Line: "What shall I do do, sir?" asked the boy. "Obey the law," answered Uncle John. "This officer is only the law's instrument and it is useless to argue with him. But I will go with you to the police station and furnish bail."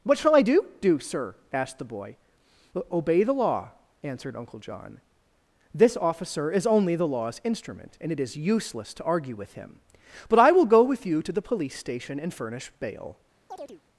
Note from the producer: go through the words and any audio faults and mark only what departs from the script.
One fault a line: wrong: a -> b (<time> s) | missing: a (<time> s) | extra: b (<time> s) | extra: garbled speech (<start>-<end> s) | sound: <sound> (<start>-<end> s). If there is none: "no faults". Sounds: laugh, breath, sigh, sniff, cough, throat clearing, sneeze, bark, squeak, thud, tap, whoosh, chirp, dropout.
sound: chirp (13.5-13.8 s)